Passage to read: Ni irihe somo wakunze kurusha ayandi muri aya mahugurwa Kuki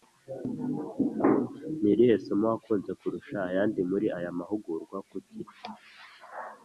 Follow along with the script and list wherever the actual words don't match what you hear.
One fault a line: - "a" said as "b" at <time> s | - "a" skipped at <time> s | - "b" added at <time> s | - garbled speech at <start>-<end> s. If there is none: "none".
none